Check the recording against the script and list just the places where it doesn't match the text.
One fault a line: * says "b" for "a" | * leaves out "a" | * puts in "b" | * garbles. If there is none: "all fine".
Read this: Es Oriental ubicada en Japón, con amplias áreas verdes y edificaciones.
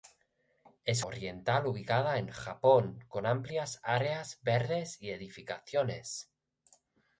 all fine